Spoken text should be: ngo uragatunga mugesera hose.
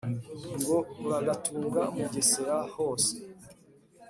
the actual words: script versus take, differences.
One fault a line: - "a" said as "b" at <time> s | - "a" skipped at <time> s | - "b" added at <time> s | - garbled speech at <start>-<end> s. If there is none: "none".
none